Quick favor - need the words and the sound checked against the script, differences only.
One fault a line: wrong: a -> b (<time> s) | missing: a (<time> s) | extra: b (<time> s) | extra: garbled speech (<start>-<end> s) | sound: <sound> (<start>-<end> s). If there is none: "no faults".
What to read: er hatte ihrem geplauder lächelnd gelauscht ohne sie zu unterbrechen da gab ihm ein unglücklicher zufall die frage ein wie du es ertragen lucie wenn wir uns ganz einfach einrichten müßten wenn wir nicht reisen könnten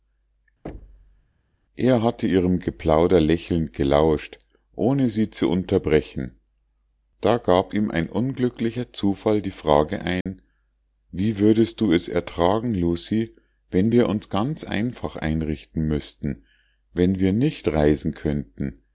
sound: thud (0.6-1.3 s)
sound: dropout (10.2-10.3 s)
extra: würdest (11.4 s)